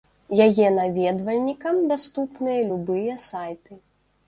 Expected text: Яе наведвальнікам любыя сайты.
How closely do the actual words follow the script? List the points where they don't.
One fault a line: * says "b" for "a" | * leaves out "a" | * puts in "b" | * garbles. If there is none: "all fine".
* puts in "даступныя"